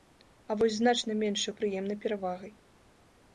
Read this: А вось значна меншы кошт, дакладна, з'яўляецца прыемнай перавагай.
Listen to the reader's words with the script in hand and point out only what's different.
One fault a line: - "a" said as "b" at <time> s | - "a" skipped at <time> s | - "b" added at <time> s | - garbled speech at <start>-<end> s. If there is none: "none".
- "кошт дакладна з'яўляецца" skipped at 1.5 s